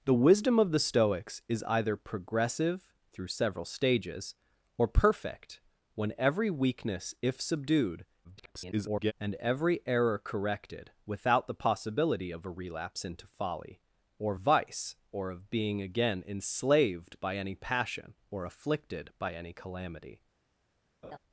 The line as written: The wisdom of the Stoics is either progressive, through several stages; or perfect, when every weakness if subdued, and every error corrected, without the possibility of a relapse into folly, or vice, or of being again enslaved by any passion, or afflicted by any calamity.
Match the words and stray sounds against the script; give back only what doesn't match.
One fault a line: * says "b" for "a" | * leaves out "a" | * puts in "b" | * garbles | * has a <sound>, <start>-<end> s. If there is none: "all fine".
* garbles
* has a laugh, 21.0-21.2 s